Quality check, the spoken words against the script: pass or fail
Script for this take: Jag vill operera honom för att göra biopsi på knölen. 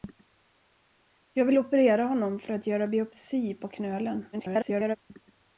fail